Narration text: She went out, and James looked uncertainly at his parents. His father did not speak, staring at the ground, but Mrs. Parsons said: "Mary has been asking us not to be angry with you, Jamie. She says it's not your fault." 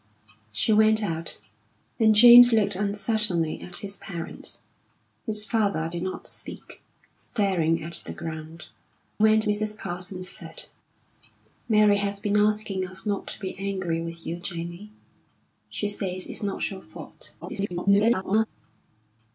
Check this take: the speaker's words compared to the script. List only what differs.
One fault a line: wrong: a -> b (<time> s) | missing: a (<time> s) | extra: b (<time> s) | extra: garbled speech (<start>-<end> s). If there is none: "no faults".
wrong: but -> went (9.2 s)
extra: garbled speech (17.4-18.5 s)